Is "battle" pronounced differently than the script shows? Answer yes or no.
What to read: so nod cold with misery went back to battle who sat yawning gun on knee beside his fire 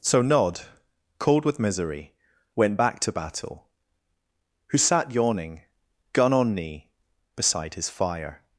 no